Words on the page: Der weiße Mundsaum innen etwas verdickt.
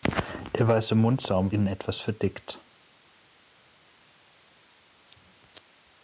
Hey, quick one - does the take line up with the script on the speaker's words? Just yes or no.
yes